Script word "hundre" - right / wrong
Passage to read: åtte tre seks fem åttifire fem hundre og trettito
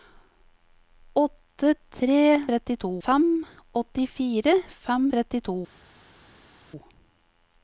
wrong